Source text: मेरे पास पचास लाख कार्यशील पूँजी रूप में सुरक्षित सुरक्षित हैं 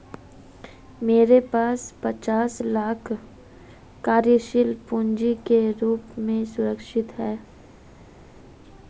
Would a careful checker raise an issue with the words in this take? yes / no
yes